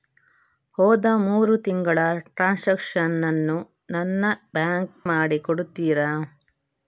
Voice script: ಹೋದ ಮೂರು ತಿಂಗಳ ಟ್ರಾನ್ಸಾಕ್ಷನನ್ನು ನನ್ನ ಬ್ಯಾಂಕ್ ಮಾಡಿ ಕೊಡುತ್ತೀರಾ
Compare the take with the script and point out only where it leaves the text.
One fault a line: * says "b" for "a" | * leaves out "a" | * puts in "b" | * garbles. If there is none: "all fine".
all fine